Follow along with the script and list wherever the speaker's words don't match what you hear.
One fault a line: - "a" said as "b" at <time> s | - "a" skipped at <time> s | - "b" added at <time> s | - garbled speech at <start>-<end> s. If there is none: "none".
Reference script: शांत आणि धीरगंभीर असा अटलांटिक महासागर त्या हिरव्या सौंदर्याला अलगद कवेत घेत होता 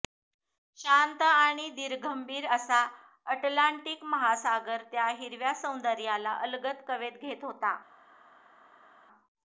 none